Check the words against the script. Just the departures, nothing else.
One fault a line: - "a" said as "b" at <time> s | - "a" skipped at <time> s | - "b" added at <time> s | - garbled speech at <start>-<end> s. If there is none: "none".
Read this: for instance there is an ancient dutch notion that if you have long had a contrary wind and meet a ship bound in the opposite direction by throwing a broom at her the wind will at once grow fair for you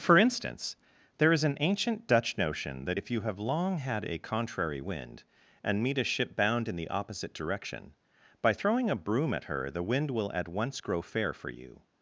none